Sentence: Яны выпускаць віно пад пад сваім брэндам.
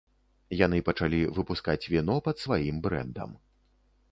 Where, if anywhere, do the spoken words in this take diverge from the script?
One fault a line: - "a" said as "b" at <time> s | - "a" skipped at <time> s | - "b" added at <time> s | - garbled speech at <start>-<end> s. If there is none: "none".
- "пачалі" added at 0.9 s
- "пад" skipped at 2.4 s